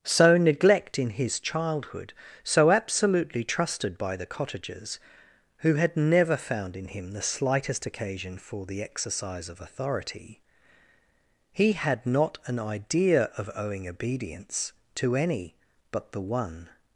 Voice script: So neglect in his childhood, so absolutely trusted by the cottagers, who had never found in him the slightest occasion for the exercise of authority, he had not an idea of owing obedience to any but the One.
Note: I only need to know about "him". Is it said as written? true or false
true